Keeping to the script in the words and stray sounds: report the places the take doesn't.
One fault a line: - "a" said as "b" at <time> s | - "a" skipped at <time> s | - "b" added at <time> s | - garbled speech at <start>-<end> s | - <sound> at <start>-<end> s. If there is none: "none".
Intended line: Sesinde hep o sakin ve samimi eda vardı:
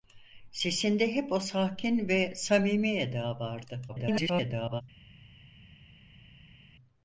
- garbled speech at 3.9-4.8 s